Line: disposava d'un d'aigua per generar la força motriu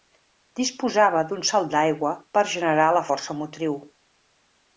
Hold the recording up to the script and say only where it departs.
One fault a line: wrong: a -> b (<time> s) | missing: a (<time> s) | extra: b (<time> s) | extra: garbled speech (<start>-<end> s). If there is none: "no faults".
extra: salt (1.5 s)